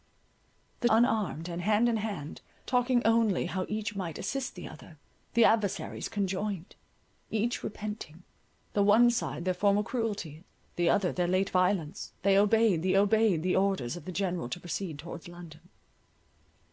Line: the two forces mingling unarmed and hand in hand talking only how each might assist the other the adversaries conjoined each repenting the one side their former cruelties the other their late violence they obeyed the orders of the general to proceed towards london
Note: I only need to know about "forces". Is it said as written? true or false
false